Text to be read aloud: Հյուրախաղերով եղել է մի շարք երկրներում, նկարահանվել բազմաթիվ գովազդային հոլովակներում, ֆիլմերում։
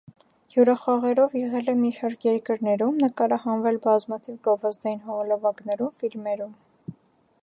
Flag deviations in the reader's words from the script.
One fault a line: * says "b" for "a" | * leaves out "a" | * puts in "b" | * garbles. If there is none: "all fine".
all fine